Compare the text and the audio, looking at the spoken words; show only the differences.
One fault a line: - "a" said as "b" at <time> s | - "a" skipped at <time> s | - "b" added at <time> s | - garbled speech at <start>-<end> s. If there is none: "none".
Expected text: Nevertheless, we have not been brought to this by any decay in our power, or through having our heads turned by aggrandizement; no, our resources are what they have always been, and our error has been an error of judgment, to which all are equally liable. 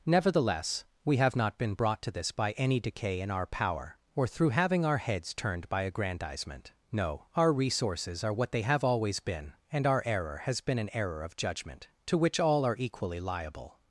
none